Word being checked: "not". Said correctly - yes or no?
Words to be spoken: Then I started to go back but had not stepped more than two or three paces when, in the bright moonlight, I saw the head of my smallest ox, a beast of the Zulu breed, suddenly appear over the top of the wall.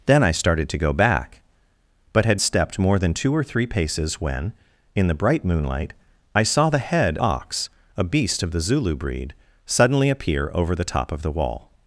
no